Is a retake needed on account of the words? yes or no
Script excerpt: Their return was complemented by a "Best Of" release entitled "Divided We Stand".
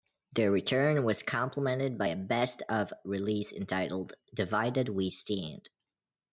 no